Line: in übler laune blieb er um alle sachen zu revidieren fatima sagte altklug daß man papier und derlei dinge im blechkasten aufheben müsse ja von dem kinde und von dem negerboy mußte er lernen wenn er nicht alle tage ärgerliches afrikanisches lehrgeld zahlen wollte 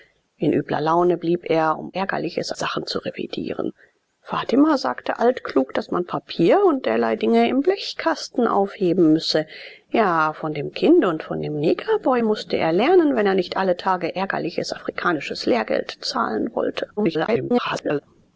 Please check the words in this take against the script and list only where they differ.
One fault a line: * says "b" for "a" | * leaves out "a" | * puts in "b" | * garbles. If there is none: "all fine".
* says "ärgerliches" for "alle"
* garbles